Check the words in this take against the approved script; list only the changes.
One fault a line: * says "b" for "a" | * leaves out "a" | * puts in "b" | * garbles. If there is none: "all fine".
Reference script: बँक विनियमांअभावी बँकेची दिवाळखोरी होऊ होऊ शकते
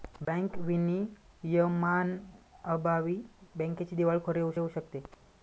all fine